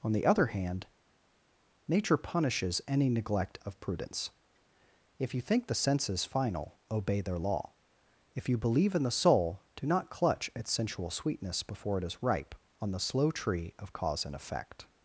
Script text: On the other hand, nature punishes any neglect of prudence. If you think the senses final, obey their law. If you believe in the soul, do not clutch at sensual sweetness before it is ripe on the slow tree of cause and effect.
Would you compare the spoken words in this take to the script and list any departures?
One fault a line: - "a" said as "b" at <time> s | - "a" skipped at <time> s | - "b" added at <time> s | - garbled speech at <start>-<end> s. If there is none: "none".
none